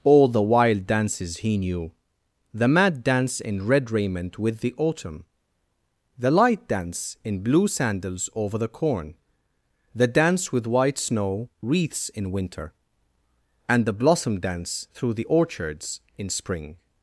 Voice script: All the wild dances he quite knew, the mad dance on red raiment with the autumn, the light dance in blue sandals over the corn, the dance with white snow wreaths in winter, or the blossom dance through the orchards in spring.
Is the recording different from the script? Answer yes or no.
yes